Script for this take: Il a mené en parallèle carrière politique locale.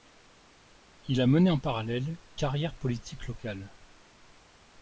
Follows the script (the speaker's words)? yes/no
yes